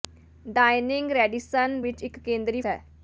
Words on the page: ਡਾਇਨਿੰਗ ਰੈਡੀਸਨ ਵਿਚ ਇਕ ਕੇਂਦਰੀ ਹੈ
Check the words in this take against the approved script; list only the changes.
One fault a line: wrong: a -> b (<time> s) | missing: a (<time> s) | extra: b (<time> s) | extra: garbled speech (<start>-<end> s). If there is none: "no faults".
no faults